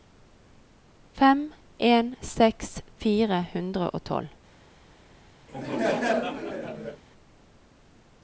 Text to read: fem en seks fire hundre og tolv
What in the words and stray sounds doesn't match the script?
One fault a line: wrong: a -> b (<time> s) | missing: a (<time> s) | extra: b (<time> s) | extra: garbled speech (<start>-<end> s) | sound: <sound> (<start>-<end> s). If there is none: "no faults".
sound: laugh (5.5-7.0 s)